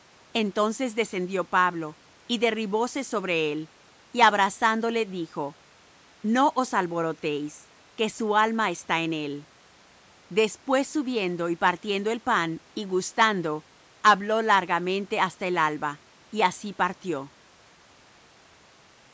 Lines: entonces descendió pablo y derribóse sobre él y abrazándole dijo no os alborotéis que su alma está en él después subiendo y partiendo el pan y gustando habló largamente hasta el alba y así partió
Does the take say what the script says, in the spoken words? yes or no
yes